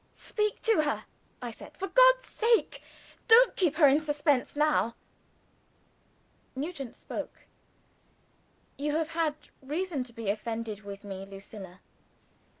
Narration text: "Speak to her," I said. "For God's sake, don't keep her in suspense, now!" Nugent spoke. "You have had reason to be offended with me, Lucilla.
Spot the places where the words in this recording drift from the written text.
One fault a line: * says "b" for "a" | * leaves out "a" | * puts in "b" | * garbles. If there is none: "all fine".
all fine